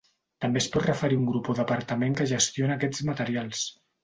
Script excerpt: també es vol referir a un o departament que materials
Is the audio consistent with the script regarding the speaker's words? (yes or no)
no